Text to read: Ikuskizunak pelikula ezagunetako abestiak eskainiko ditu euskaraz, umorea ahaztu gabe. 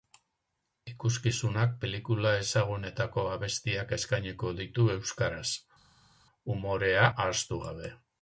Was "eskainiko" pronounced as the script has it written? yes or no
yes